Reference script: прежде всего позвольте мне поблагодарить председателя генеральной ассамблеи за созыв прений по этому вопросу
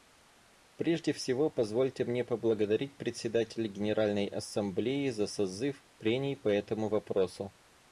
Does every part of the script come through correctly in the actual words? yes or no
yes